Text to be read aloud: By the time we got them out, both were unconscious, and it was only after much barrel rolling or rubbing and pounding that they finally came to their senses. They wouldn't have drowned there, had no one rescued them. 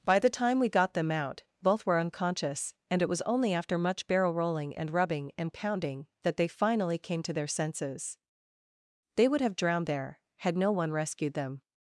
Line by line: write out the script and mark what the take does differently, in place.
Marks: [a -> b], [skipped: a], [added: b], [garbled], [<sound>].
By the time we got them out, both were unconscious, and it was only after much barrel rolling [or -> and] rubbing and pounding that they finally came to their senses. They [wouldn't -> would] have drowned there, had no one rescued them.